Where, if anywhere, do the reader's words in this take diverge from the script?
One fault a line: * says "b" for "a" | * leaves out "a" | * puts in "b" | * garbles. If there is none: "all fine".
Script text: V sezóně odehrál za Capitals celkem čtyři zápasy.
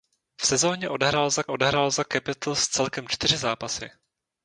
* puts in "odehrál za"